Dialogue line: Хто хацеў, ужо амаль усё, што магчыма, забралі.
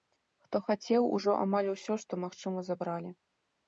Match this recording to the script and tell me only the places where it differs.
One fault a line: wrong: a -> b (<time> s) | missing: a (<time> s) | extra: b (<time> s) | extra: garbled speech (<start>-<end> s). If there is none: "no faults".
no faults